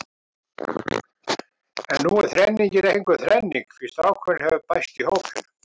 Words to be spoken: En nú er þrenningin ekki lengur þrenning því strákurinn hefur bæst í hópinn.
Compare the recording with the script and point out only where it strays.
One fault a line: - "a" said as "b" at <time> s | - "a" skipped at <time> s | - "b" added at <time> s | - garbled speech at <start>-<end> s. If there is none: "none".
- "ekki" skipped at 2.9 s